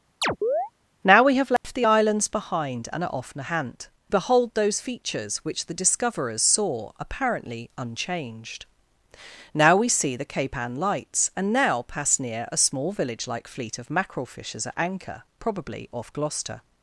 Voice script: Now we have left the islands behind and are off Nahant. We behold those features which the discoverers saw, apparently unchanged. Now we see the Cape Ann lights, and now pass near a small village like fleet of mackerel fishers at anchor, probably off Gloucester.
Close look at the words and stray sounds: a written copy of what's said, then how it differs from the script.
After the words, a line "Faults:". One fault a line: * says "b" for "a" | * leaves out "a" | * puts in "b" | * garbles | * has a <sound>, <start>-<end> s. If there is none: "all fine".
Now we have left the islands behind and are off Nahant. Behold those features which the discoverers saw, apparently unchanged. Now we see the Cape Ann lights, and now pass near a small village like fleet of mackerel fishers at anchor, probably off Gloucester.
Faults:
* has a chirp, 0.2-0.7 s
* has a dropout, 1.6-1.6 s
* leaves out "We"